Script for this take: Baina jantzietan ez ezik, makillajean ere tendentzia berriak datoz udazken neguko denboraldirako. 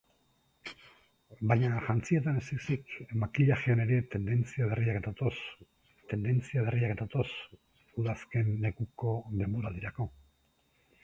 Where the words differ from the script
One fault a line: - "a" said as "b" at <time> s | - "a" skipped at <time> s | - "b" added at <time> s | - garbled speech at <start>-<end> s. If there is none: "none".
- "tendentzia berriak datoz" added at 6.1 s